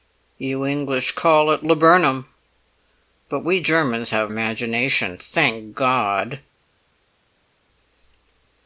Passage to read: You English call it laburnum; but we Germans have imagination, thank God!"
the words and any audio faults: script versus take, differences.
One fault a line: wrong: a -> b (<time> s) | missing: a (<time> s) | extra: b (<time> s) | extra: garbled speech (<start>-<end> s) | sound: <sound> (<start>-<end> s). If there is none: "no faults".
no faults